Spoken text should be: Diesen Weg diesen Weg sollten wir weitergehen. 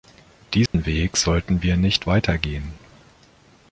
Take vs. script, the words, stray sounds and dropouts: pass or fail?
fail